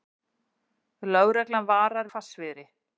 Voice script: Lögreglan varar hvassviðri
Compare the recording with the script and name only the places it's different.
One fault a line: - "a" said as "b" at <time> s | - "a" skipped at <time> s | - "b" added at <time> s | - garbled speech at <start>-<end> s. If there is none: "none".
none